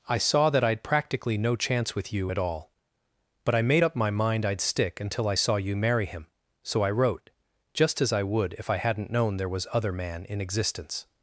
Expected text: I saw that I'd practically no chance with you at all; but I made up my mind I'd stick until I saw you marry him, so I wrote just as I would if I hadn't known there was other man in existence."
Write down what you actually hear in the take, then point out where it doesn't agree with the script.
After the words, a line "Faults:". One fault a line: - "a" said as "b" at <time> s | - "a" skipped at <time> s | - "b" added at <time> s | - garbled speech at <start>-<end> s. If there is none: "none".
I saw that I'd practically no chance with you at all; but I made up my mind I'd stick until I saw you marry him, so I wrote just as I would if I hadn't known there was other man in existence."
Faults:
none